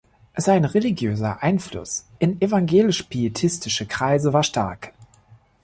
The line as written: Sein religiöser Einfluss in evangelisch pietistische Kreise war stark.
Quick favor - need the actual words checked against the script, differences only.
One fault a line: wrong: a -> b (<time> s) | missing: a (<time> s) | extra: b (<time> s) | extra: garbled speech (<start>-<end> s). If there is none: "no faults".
no faults